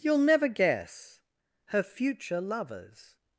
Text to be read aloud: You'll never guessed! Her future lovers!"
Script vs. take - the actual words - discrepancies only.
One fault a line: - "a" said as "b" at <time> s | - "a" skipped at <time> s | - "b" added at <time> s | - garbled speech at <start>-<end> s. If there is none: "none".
- "guessed" said as "guess" at 0.5 s